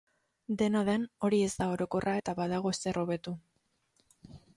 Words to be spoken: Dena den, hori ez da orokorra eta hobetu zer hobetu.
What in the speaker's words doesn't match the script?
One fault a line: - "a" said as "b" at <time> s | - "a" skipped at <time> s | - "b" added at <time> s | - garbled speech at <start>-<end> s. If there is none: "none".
- "hobetu" said as "badago" at 2.4 s